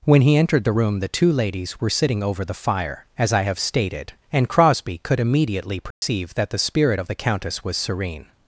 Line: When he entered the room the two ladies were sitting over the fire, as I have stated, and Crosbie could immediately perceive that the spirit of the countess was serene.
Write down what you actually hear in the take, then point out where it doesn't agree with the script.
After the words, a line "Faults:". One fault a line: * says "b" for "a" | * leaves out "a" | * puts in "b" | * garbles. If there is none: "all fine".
When he entered the room the two ladies were sitting over the fire, as I have stated, and Crosbie could immediately perceive that the spirit of the countess was serene.
Faults:
all fine